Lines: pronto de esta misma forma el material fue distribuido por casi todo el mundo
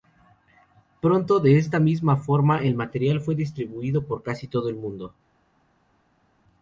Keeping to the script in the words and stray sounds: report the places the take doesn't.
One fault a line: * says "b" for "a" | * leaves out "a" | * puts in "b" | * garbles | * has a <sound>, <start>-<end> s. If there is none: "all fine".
all fine